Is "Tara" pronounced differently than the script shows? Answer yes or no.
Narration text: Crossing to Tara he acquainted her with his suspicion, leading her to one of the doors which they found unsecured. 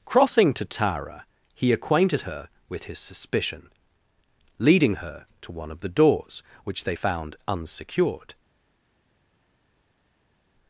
no